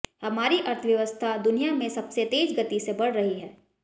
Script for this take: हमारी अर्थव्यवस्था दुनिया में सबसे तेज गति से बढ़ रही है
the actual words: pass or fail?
pass